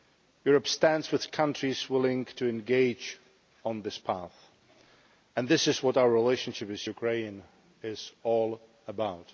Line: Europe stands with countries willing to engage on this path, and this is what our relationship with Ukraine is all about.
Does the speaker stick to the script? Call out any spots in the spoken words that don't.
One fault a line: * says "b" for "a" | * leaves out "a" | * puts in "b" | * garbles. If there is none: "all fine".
all fine